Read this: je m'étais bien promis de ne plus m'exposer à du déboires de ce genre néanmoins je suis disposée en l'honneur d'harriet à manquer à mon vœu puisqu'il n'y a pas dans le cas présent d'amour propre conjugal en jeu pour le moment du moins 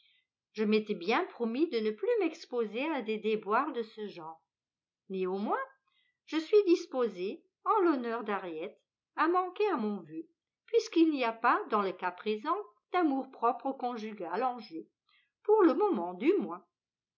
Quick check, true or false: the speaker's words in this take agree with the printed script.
false